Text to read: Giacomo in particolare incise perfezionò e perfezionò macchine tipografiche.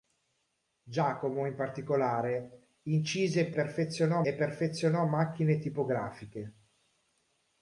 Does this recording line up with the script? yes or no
yes